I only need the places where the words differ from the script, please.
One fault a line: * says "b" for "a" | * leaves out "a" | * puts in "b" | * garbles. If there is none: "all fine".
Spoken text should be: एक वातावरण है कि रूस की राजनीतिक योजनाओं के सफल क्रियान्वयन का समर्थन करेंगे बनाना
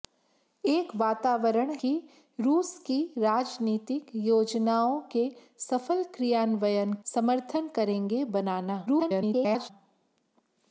* leaves out "है"
* leaves out "का"
* garbles